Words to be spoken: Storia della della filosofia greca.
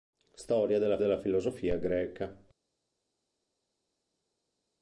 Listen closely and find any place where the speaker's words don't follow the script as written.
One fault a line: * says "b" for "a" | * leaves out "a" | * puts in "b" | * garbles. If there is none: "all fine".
all fine